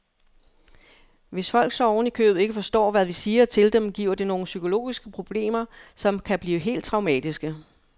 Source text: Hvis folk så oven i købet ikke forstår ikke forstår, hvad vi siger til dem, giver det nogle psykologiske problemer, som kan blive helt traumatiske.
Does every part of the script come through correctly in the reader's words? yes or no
no